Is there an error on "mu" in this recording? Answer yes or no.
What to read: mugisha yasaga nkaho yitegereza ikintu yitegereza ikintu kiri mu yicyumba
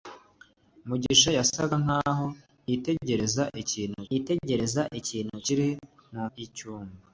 no